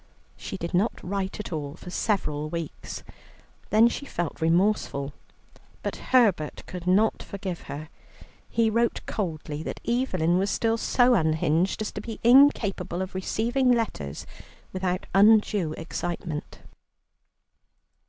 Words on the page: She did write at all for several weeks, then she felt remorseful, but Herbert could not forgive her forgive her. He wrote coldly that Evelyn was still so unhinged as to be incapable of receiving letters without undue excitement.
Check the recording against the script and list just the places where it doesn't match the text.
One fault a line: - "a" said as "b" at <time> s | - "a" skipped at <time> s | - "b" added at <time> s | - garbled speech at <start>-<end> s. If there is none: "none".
- "not" added at 0.7 s
- "forgive her" skipped at 7.9 s